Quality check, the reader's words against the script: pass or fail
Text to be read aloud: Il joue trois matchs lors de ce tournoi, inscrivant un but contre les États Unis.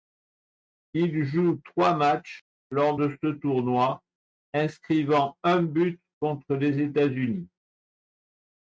pass